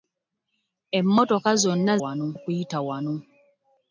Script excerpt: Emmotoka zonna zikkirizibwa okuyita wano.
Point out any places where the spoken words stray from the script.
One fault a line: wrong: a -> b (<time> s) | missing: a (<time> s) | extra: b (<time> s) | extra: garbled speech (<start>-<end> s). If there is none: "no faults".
wrong: zikkirizibwa -> wano (2.0 s)